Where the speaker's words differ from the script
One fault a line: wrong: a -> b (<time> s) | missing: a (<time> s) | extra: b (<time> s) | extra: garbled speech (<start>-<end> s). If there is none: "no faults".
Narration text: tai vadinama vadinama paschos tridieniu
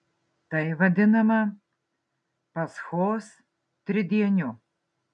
missing: vadinama (1.4 s)